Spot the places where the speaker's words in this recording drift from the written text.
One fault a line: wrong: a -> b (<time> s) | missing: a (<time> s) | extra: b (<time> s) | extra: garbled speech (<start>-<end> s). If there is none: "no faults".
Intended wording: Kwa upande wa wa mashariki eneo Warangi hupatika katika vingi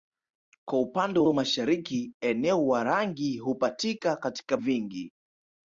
no faults